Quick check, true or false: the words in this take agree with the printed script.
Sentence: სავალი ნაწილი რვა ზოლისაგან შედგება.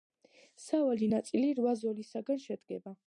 true